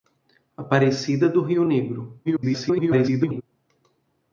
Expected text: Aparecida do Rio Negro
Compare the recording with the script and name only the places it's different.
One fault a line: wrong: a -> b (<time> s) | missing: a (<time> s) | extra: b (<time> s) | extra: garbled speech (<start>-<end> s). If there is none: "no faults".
extra: garbled speech (2.2-3.4 s)